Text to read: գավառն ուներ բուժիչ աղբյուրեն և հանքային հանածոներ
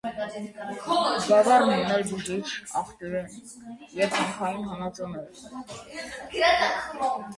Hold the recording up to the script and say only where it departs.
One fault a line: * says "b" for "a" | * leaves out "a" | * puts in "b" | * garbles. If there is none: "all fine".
all fine